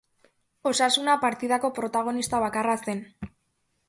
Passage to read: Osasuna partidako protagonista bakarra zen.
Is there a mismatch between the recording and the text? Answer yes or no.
no